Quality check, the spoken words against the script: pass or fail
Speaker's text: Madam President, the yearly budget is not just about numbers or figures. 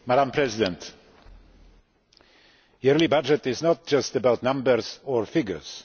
pass